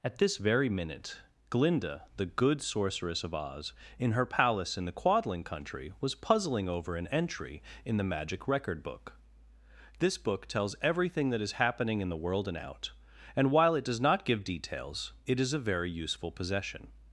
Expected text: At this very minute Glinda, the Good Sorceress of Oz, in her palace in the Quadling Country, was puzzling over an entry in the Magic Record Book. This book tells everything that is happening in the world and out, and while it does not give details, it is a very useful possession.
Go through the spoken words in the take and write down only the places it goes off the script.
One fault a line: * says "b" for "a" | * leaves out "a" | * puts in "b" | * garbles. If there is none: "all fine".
all fine